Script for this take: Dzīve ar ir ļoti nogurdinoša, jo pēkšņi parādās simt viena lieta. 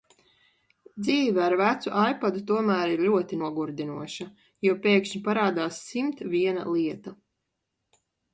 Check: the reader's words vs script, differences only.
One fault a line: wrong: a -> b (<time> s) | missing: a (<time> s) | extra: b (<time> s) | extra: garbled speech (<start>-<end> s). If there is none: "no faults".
extra: vecu ipadu tomēr (1.6 s)